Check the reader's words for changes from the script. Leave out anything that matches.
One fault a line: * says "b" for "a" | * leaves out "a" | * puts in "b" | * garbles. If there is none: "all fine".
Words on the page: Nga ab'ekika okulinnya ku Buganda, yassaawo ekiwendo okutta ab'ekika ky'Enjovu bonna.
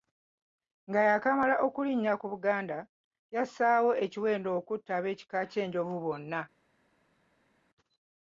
* says "yaakamala" for "ab'ekika"